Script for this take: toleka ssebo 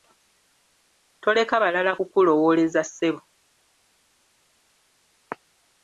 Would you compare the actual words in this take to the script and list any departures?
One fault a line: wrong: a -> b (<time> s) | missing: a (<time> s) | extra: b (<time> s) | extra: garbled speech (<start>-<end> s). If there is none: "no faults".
extra: balala kukulowooleza (1.6 s)